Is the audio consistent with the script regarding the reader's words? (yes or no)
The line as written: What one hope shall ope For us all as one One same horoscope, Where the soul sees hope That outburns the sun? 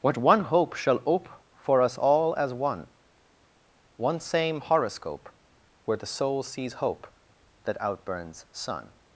no